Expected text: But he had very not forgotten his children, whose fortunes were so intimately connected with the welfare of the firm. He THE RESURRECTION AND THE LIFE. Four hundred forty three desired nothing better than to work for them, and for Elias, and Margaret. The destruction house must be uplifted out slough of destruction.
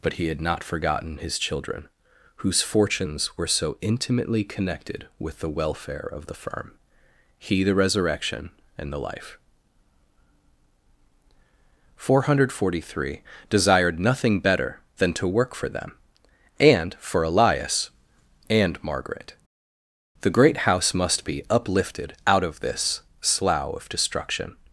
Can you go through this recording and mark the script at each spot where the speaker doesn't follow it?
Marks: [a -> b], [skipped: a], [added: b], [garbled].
But he had [skipped: very] not forgotten his children, whose fortunes were so intimately connected with the welfare of the firm. He THE RESURRECTION AND THE LIFE. Four hundred forty three desired nothing better than to work for them, and for Elias, and Margaret. The [destruction -> great] house must be uplifted out [added: of this] slough of destruction.